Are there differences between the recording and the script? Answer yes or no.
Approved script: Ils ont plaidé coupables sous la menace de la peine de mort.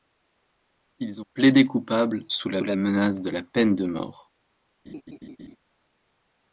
yes